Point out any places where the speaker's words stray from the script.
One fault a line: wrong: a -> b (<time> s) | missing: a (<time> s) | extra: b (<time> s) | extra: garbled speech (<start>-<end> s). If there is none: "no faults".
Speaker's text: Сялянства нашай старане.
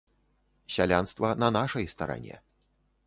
extra: на (1.3 s)